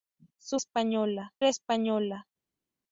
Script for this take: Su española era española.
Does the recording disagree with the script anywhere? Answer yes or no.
no